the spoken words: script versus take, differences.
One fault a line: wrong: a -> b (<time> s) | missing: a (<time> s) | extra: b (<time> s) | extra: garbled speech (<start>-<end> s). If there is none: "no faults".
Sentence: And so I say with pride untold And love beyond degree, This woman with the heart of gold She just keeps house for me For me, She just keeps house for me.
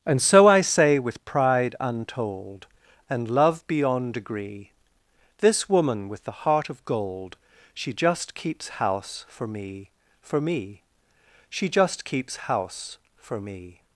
no faults